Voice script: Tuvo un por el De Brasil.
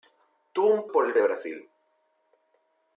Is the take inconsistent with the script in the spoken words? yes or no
no